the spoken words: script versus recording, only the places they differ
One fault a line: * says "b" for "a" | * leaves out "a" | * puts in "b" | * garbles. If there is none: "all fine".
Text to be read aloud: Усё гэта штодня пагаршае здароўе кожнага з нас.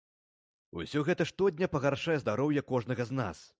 all fine